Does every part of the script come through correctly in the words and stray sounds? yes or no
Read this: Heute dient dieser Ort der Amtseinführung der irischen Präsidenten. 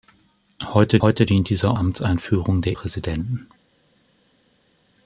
no